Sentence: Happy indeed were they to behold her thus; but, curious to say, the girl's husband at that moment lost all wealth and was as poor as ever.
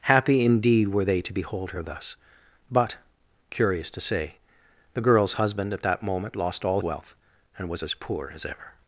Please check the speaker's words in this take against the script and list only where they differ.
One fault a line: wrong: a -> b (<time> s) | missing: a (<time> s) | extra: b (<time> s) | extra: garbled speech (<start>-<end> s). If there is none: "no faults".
no faults